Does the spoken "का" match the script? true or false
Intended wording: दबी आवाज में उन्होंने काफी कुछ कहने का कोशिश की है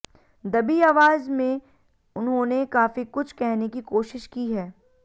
false